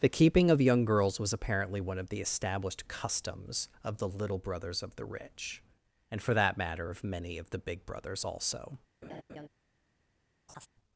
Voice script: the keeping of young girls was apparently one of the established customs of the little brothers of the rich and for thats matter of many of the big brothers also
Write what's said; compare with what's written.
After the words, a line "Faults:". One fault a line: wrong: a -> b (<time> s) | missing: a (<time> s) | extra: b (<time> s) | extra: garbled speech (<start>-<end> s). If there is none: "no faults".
the keeping of young girls was apparently one of the established customs of the little brothers of the rich and for that matter of many of the big brothers also
Faults:
wrong: thats -> that (6.3 s)